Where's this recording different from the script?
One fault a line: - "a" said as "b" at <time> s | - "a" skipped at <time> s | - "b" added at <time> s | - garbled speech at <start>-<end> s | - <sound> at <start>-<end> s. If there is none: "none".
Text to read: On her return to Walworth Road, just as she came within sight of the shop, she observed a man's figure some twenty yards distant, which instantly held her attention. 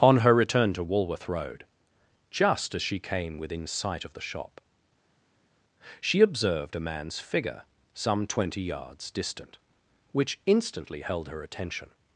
none